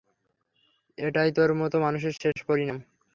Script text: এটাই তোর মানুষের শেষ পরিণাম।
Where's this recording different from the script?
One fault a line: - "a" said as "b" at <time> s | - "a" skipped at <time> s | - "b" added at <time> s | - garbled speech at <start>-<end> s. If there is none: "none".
- "মতো" added at 1.6 s